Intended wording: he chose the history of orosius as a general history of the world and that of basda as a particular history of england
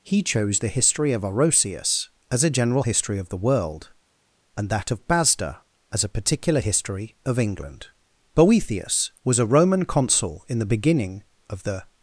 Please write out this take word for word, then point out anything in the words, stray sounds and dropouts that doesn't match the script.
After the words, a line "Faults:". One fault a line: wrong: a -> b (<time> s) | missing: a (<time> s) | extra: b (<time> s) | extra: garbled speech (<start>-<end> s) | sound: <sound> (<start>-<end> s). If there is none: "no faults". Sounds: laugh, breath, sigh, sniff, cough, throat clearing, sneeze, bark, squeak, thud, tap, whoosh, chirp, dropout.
he chose the history of orosius as a general history of the world and that of basda as a particular history of england boethius was a roman consul in the beginning of the
Faults:
extra: boethius was a roman consul in the beginning of the (8.3 s)